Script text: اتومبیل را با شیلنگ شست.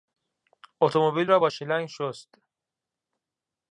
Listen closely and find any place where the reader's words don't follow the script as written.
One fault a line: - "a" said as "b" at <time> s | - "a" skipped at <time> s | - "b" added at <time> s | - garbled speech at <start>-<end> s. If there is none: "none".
none